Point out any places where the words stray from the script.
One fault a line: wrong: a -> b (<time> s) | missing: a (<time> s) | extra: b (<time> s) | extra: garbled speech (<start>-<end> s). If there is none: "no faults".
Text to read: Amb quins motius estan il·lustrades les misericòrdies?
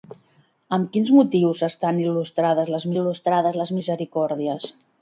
extra: il·lustrades les (3.0 s)